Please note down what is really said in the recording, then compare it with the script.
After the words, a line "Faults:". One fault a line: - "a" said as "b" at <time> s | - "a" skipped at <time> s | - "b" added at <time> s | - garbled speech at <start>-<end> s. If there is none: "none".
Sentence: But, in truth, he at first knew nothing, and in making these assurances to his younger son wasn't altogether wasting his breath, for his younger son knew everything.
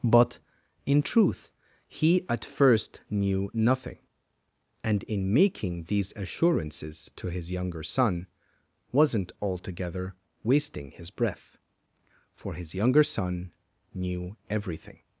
But, in truth, he at first knew nothing, and in making these assurances to his younger son wasn't altogether wasting his breath, for his younger son knew everything.
Faults:
none